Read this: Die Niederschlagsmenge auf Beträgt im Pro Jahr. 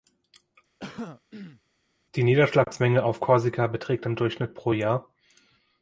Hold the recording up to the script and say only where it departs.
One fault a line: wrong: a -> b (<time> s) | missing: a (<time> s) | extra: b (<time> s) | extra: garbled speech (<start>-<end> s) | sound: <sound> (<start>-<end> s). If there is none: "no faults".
sound: throat clearing (0.8-1.6 s)
extra: Korsika (3.2 s)
extra: Durchschnitt (4.2 s)